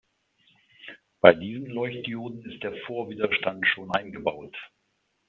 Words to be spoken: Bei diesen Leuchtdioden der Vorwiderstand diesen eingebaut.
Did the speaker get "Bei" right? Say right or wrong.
right